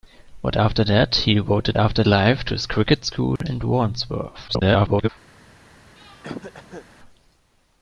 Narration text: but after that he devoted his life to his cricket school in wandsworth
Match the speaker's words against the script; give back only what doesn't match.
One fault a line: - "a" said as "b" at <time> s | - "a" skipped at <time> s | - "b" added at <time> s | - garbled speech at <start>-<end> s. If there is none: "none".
- "his" said as "after" at 1.8 s
- garbled speech at 4.5-5.1 s